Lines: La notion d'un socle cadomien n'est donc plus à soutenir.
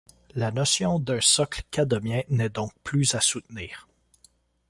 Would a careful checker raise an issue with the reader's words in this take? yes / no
no